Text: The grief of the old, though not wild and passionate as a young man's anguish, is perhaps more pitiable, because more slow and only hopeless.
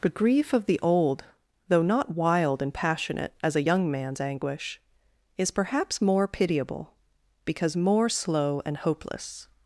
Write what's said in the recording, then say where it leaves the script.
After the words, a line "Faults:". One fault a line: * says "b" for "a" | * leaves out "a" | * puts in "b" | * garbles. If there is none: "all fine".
The grief of the old, though not wild and passionate as a young man's anguish, is perhaps more pitiable, because more slow and hopeless.
Faults:
* leaves out "only"